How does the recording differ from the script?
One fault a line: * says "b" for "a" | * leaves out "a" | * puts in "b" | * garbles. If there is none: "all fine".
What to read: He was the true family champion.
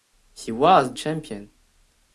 * leaves out "the true family"